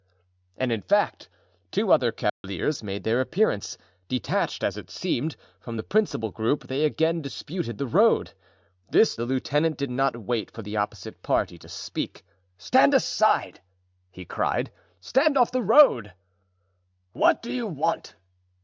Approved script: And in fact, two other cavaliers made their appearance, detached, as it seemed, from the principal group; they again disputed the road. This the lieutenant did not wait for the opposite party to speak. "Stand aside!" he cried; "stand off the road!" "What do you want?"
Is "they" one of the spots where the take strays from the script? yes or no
no